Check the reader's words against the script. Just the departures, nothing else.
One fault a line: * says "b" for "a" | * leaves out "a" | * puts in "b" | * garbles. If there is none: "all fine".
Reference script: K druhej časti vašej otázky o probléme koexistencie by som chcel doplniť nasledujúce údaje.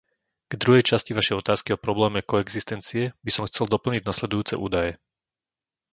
all fine